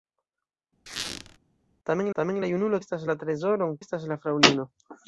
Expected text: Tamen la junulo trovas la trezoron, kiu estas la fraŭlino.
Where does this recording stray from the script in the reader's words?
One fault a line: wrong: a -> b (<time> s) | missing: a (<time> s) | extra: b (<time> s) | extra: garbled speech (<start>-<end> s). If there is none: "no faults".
extra: tamen (2.2 s)
wrong: trovas -> estas (2.8 s)
missing: kiu (3.8 s)